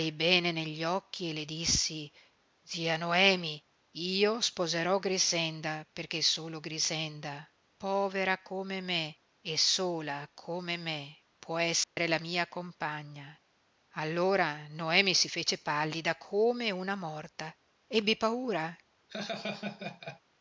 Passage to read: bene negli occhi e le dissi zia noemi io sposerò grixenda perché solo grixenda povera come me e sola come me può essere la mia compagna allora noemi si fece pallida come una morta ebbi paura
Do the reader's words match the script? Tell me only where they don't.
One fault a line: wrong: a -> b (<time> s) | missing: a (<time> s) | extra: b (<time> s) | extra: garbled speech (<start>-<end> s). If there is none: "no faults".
no faults